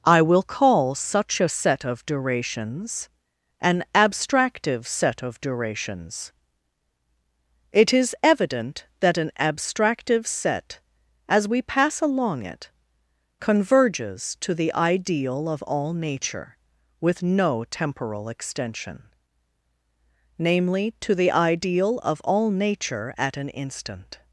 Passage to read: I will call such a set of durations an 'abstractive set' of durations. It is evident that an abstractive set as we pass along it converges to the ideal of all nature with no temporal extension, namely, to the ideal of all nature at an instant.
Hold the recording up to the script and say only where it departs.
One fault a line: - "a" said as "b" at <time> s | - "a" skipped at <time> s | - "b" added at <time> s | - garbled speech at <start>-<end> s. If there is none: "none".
none